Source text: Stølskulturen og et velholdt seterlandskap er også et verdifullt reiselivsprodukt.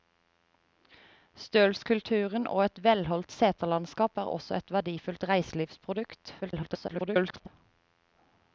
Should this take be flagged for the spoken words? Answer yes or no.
yes